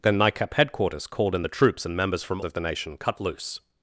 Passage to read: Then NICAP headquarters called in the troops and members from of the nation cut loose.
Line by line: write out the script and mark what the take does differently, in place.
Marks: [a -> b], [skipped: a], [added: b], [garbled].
Then NICAP headquarters called in the troops and members from of the nation cut loose.